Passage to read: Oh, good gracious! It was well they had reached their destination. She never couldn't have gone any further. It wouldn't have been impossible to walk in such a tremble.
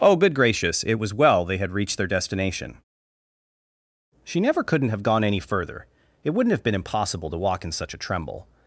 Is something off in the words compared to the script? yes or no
no